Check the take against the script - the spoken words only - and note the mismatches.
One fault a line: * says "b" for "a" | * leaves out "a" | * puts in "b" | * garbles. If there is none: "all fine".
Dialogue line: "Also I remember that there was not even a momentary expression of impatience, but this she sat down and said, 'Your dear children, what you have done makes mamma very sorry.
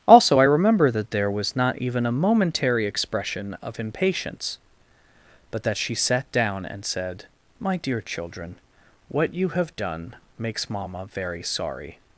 * says "that" for "this"
* says "My" for "Your"